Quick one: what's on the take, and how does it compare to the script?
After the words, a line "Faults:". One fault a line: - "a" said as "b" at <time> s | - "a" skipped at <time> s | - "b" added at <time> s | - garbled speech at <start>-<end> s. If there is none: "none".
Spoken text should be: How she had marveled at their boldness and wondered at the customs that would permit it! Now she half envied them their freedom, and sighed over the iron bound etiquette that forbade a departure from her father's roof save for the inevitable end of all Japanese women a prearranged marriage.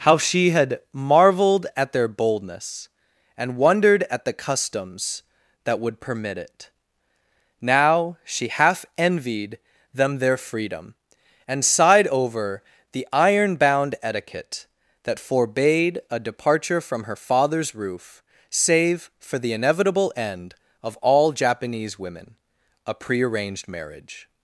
How she had marveled at their boldness and wondered at the customs that would permit it! Now she half envied them their freedom, and sighed over the iron bound etiquette that forbade a departure from her father's roof save for the inevitable end of all Japanese women a prearranged marriage.
Faults:
none